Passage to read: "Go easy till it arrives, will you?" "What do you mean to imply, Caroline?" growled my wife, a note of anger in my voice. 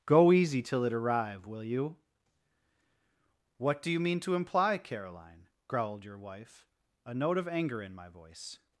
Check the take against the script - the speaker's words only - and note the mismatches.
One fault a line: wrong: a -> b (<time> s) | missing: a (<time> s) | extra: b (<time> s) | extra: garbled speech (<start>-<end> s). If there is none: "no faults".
wrong: arrives -> arrive (0.9 s)
wrong: my -> your (6.0 s)